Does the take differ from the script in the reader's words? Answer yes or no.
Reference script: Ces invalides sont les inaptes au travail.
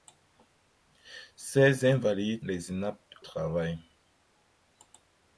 yes